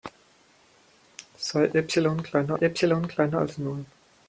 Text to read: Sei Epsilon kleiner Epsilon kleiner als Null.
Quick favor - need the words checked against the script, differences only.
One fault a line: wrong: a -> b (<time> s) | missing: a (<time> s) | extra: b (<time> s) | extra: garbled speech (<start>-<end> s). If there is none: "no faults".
no faults